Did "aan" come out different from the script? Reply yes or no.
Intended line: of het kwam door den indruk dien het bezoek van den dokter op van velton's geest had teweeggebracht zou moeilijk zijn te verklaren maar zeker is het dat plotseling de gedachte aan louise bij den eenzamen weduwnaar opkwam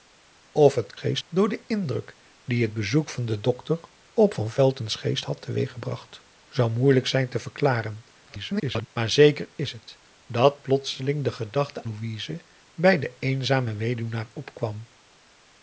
yes